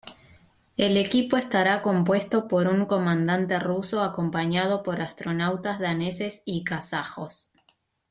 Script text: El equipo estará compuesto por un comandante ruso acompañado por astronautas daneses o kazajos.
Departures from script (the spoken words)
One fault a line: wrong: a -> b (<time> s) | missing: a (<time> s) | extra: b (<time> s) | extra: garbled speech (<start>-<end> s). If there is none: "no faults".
wrong: o -> y (6.5 s)